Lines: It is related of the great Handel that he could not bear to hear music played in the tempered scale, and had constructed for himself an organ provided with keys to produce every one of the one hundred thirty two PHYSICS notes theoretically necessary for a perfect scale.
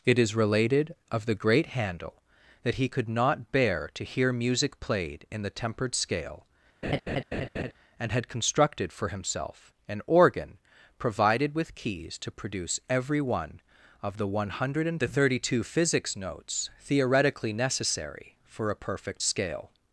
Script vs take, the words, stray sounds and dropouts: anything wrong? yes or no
yes